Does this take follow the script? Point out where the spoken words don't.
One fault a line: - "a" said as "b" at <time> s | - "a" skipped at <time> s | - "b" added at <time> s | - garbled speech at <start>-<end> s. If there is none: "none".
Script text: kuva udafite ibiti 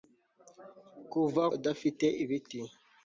none